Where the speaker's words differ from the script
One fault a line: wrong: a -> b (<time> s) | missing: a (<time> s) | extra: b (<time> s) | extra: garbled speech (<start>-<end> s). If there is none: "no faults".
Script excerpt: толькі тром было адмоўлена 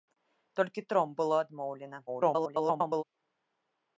extra: garbled speech (2.1-3.0 s)